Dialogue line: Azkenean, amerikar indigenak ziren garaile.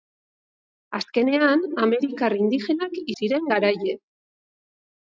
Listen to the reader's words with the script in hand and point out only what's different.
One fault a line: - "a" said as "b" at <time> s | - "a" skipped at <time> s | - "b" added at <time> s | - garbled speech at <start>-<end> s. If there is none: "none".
none